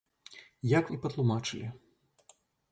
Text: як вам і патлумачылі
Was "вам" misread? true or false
true